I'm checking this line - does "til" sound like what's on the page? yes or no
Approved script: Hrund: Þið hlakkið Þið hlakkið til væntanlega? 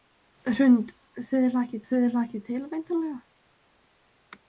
yes